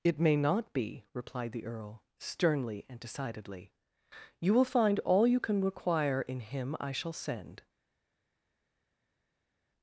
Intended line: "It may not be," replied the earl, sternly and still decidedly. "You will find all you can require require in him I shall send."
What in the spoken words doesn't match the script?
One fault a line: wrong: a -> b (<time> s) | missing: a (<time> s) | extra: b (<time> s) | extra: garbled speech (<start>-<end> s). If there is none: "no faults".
missing: still (3.0 s)
missing: require (6.2 s)